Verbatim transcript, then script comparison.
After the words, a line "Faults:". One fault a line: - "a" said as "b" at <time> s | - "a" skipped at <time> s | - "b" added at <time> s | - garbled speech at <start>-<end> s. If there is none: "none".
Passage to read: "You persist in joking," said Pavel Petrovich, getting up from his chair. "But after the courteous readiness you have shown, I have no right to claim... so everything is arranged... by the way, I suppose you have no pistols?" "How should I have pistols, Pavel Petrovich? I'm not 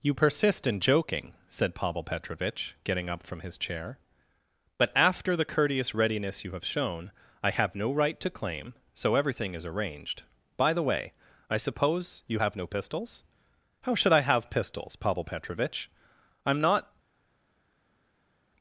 "You persist in joking," said Pavel Petrovich, getting up from his chair. "But after the courteous readiness you have shown, I have no right to claim... so everything is arranged... by the way, I suppose you have no pistols?" "How should I have pistols, Pavel Petrovich? I'm not
Faults:
none